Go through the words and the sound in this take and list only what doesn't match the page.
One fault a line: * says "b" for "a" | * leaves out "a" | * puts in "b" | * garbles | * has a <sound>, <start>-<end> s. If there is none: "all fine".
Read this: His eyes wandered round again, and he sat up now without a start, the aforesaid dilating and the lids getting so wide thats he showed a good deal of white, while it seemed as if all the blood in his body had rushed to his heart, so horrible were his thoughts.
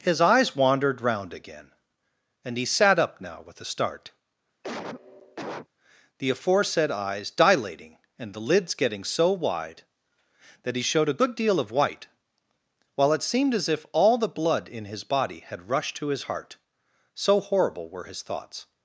* says "with" for "without"
* has a cough, 4.6-5.7 s
* puts in "eyes"
* says "that" for "thats"